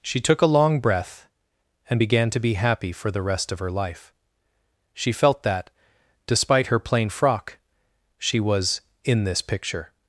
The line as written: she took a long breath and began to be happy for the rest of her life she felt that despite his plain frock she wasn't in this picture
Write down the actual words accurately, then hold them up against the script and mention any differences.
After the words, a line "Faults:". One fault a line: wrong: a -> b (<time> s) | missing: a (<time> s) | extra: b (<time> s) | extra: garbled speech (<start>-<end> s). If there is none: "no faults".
she took a long breath and began to be happy for the rest of her life she felt that despite her plain frock she was in this picture
Faults:
wrong: his -> her (6.7 s)
wrong: wasn't -> was (8.4 s)